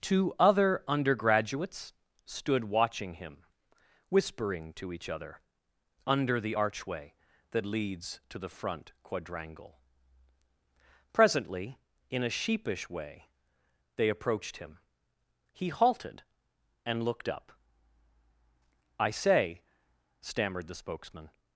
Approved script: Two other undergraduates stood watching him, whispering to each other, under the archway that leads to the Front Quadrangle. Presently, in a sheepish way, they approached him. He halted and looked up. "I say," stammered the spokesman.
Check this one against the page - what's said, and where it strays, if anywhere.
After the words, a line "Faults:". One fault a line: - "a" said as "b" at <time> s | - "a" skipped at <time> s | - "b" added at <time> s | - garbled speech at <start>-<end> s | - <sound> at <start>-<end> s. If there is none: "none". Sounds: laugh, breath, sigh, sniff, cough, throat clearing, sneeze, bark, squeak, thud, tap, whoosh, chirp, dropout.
Two other undergraduates stood watching him, whispering to each other, under the archway that leads to the Front Quadrangle. Presently, in a sheepish way, they approached him. He halted and looked up. "I say," stammered the spokesman.
Faults:
none